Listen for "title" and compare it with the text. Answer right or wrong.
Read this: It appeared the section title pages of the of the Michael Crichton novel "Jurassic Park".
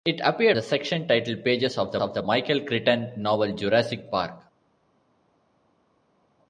right